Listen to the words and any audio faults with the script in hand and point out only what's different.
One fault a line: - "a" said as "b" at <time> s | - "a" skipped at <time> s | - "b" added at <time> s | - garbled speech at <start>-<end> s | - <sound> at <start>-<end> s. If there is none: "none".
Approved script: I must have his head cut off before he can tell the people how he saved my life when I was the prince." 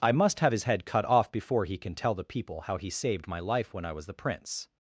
none